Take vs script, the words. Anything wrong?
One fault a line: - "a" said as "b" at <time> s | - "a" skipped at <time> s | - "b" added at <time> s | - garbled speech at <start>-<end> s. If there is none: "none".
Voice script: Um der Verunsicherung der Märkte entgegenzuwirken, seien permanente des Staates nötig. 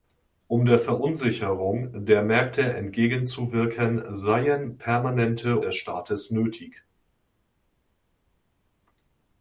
none